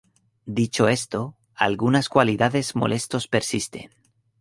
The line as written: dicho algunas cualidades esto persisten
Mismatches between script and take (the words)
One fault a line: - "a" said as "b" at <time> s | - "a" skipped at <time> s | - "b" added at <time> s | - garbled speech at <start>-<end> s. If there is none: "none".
- "esto" added at 0.9 s
- "esto" said as "molestos" at 2.7 s